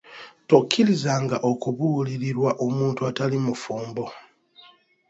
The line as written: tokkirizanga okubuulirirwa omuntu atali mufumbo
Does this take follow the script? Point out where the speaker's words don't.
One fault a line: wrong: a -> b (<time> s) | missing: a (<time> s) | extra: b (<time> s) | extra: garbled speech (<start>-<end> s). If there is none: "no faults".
no faults